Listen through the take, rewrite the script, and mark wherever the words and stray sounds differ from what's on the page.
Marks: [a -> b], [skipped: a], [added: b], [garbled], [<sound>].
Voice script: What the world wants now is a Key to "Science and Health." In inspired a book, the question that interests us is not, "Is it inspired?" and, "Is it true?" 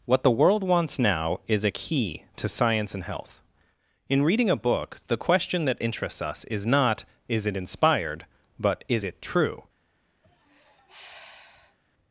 What the world wants now is a Key to "Science and Health." In [inspired -> reading] a book, the question that interests us is not, "Is it inspired?" [and, -> but] "Is it true?" [sigh]